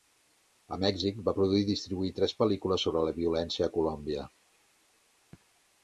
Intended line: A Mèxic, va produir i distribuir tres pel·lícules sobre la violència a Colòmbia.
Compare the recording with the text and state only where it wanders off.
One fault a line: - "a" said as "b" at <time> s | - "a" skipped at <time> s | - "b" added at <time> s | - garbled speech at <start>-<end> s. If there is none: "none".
none